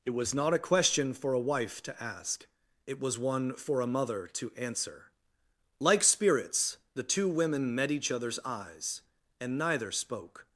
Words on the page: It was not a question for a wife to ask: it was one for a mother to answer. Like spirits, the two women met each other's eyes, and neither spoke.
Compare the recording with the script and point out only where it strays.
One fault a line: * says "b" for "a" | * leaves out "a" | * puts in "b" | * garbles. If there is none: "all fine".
all fine